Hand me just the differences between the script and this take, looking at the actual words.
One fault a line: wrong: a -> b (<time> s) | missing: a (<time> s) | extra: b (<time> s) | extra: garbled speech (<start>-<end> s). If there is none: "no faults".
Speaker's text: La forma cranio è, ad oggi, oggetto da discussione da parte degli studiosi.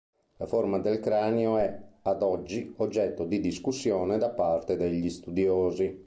extra: del (0.8 s)
wrong: da -> di (3.3 s)